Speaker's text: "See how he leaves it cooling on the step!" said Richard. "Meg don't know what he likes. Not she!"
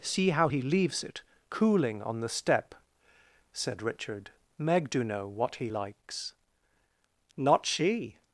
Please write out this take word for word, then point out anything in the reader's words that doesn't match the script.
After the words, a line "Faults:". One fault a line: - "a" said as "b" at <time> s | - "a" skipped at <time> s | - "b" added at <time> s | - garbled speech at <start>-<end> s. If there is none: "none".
"See how he leaves it cooling on the step!" said Richard. "Meg do know what he likes. Not she!"
Faults:
- "don't" said as "do" at 4.9 s